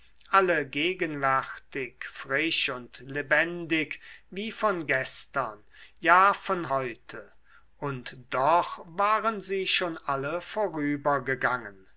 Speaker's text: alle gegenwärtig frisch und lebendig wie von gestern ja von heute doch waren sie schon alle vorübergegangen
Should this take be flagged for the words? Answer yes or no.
yes